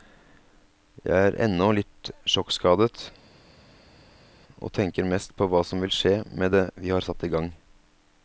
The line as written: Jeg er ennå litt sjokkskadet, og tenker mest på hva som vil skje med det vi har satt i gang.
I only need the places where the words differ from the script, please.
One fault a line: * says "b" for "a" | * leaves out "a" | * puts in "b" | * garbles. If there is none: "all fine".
all fine